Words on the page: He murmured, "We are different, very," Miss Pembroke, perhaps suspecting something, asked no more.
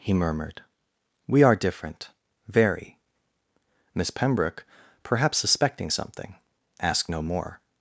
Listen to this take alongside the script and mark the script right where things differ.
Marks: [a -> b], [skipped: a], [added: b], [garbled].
He murmured, "We are different, very," Miss Pembroke, perhaps suspecting something, asked no more.